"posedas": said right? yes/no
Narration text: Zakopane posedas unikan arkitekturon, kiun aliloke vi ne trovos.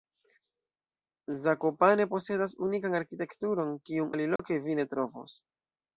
yes